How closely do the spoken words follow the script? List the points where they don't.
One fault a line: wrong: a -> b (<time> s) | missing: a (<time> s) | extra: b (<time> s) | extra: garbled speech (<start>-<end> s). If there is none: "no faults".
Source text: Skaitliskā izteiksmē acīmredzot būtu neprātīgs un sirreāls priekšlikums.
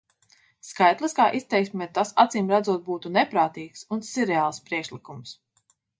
extra: tas (2.0 s)